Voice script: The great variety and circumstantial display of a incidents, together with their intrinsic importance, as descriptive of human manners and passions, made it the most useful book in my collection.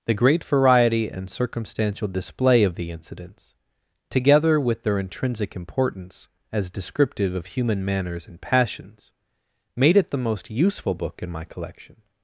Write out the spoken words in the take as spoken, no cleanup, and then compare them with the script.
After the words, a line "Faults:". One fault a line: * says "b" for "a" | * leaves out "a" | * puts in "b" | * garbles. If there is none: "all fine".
The great variety and circumstantial display of the incidents, together with their intrinsic importance, as descriptive of human manners and passions, made it the most useful book in my collection.
Faults:
* says "the" for "a"